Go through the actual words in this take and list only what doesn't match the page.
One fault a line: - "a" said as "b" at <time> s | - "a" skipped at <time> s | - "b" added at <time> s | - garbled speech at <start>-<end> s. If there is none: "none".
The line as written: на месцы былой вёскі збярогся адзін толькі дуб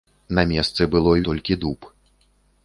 - "вёскі збярогся адзін" skipped at 1.2 s